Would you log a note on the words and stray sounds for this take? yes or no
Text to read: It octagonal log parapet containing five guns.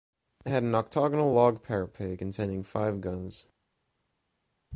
yes